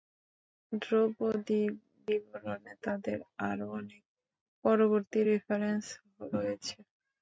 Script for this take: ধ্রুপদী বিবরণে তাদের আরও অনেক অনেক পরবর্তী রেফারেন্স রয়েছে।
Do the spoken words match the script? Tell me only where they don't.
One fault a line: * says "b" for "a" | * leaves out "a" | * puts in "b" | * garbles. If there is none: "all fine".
* leaves out "অনেক"